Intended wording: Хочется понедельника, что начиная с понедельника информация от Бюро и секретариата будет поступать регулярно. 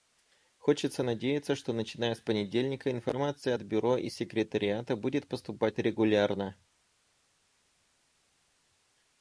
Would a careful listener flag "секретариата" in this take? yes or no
no